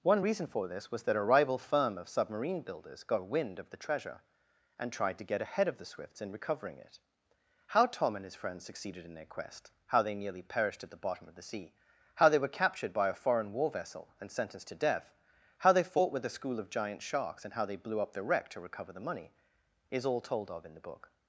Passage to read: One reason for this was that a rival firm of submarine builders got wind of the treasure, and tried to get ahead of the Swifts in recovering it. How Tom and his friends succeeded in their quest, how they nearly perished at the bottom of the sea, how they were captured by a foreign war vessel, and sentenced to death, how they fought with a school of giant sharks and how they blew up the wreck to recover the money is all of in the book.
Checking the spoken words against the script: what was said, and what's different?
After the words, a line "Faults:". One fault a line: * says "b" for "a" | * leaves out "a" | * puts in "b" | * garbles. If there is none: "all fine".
One reason for this was that a rival firm of submarine builders got wind of the treasure, and tried to get ahead of the Swifts in recovering it. How Tom and his friends succeeded in their quest, how they nearly perished at the bottom of the sea, how they were captured by a foreign war vessel, and sentenced to death, how they fought with a school of giant sharks and how they blew up the wreck to recover the money is all told of in the book.
Faults:
* puts in "told"